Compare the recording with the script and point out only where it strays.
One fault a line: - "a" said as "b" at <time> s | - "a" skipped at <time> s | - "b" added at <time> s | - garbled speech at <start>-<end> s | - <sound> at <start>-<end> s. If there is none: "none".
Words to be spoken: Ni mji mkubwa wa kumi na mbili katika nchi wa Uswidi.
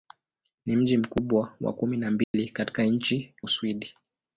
- dropout at 2.2-2.3 s
- "wa" skipped at 3.3 s